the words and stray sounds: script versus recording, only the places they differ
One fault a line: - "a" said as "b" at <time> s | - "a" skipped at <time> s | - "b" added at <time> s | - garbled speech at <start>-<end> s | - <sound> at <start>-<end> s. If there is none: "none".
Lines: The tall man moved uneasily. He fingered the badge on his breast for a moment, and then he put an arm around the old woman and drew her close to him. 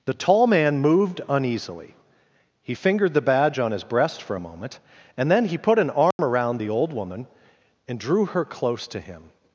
- dropout at 6.1-6.2 s